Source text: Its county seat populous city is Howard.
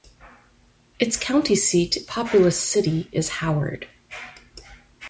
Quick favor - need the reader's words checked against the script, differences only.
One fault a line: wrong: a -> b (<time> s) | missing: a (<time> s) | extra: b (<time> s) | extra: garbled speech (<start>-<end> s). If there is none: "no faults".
no faults